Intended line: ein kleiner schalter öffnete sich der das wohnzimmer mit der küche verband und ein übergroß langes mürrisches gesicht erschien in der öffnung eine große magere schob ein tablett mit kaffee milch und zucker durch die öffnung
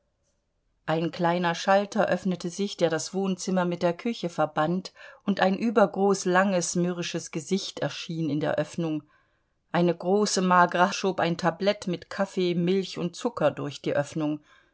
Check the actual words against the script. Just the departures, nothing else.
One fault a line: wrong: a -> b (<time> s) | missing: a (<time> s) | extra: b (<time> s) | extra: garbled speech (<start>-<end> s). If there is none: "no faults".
no faults